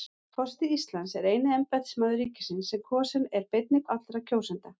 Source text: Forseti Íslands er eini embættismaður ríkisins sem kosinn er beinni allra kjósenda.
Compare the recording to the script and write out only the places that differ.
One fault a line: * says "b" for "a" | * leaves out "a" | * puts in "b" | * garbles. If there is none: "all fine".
all fine